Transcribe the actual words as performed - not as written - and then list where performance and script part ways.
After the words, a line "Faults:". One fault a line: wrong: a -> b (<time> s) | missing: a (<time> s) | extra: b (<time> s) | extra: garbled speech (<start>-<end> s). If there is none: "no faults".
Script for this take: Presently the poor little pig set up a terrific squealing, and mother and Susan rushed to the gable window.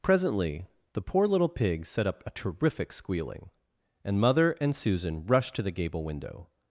Presently the poor little pig set up a terrific squealing, and mother and Susan rushed to the gable window.
Faults:
no faults